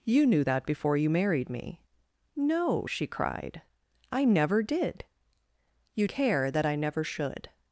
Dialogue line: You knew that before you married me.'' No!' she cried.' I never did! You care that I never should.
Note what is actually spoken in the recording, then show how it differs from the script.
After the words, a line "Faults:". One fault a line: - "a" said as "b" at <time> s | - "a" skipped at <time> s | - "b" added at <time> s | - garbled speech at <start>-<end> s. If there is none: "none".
You knew that before you married me.'' No!' she cried.' I never did! You care that I never should.
Faults:
none